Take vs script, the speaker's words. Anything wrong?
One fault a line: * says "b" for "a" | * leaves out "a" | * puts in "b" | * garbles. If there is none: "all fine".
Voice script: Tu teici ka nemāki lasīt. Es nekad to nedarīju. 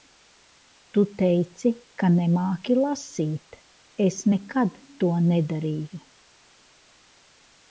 all fine